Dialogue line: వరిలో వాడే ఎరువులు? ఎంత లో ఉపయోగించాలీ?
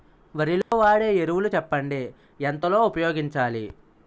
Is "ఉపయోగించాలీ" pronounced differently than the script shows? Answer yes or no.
no